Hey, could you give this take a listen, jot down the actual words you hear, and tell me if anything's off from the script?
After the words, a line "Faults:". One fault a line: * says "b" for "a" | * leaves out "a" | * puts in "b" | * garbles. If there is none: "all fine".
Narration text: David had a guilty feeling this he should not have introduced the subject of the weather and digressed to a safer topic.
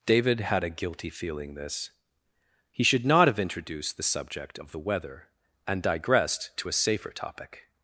David had a guilty feeling this he should not have introduced the subject of the weather and digressed to a safer topic.
Faults:
all fine